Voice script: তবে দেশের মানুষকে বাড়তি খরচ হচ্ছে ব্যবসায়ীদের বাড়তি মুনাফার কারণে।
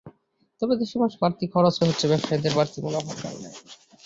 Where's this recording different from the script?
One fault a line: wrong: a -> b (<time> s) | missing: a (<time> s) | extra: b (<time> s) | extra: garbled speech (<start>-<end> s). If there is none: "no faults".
no faults